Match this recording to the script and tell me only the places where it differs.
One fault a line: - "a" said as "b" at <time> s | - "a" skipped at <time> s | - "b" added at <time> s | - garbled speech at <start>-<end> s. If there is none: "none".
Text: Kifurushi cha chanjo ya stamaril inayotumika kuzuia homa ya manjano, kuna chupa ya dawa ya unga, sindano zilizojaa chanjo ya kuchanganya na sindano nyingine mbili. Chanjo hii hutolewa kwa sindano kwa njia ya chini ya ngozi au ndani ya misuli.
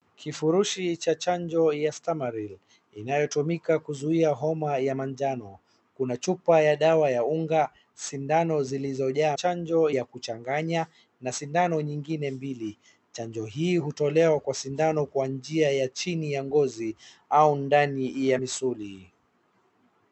none